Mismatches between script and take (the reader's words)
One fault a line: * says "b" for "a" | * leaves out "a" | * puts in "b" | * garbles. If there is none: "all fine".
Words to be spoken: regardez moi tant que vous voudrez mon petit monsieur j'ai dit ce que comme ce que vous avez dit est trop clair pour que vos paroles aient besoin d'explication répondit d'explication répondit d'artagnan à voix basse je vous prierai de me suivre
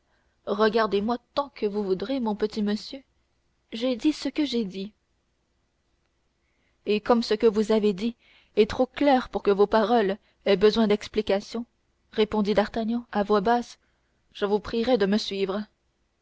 * puts in "j'ai dit et"
* leaves out "d'explication répondit"